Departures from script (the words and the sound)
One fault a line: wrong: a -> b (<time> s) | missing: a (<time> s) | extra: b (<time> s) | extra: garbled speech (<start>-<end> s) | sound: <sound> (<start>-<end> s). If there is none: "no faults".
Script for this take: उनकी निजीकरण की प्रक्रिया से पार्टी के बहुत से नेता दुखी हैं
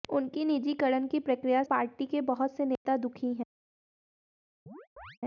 missing: से (1.6 s)
sound: dropout (2.8-2.9 s)
sound: chirp (4.7-5.2 s)